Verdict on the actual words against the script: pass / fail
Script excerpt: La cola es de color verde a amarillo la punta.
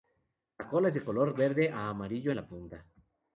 pass